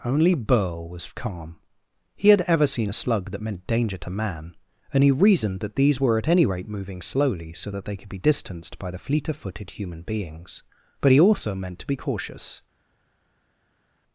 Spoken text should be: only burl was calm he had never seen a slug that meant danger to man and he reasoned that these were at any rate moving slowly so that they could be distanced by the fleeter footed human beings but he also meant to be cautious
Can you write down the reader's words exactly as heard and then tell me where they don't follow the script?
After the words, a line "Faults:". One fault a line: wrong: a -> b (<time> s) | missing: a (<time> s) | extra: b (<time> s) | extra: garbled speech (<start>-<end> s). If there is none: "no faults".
only burl was calm he had ever seen a slug that meant danger to man and he reasoned that these were at any rate moving slowly so that they could be distanced by the fleeter footed human beings but he also meant to be cautious
Faults:
wrong: never -> ever (2.4 s)